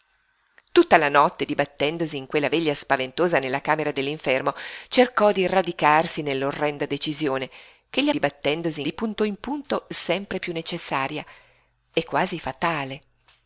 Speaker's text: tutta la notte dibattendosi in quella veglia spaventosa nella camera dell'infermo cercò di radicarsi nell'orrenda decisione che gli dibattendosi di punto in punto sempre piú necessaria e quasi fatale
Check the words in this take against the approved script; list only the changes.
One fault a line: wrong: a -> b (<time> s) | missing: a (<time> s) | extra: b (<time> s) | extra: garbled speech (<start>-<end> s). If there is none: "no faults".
no faults